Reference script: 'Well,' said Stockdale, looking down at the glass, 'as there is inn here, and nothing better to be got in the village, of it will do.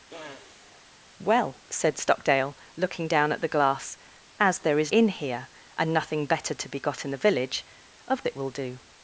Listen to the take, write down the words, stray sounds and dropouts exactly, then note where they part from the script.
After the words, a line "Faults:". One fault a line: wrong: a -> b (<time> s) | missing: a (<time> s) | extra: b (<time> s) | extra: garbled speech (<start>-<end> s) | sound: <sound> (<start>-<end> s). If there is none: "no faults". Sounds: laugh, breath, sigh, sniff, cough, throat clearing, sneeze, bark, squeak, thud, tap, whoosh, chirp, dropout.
'Well,' said Stockdale, looking down at the glass, 'as there is inn here, and nothing better to be got in the village, of it will do.
Faults:
sound: sniff (0.1-0.8 s)